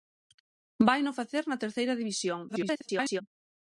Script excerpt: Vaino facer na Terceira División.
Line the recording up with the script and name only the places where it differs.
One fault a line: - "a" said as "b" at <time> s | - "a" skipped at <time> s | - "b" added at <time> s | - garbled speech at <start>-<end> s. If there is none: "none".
- garbled speech at 2.5-3.2 s